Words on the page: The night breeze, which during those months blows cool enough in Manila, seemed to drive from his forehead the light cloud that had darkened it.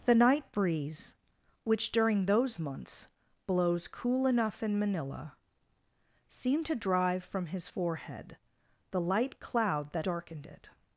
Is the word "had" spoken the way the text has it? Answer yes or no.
no